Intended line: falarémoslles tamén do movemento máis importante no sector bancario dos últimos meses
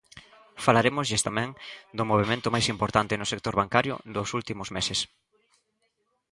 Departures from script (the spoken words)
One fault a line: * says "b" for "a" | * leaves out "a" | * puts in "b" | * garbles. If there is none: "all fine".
all fine